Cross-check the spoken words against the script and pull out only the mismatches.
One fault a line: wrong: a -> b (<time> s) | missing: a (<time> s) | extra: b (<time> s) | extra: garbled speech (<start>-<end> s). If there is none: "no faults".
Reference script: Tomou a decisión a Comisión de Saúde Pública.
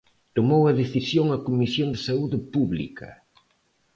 no faults